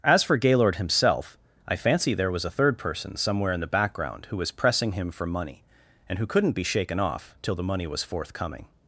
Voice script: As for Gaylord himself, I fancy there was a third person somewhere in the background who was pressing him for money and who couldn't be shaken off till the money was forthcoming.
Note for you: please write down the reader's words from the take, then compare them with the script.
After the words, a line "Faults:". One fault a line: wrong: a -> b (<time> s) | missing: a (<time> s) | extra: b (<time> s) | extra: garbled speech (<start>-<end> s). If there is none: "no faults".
As for Gaylord himself, I fancy there was a third person somewhere in the background who was pressing him for money and who couldn't be shaken off till the money was forthcoming.
Faults:
no faults